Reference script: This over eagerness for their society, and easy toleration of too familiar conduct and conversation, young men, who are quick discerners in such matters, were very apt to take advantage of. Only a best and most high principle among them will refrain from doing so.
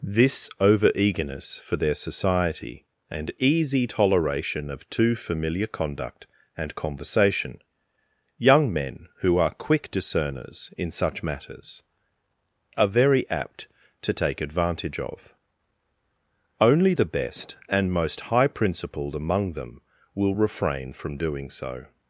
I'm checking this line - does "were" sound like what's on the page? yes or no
no